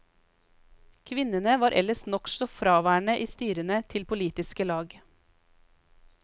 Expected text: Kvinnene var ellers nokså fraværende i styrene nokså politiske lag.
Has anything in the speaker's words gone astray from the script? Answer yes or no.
yes